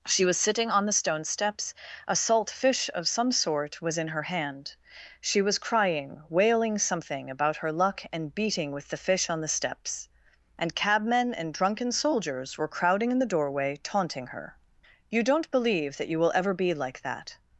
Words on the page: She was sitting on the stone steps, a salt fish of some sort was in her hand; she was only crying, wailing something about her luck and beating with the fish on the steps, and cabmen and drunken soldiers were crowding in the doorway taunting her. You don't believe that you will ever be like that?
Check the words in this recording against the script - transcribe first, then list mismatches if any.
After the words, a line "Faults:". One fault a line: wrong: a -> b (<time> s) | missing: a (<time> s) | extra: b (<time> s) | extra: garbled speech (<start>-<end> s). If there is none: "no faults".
She was sitting on the stone steps, a salt fish of some sort was in her hand; she was crying, wailing something about her luck and beating with the fish on the steps, and cabmen and drunken soldiers were crowding in the doorway taunting her. You don't believe that you will ever be like that?
Faults:
missing: only (5.6 s)